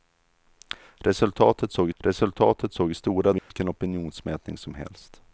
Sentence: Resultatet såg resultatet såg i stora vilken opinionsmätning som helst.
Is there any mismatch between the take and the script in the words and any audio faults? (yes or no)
yes